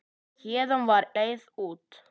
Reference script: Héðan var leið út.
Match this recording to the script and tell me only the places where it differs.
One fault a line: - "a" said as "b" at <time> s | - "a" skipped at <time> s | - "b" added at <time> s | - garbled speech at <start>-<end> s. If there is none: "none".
none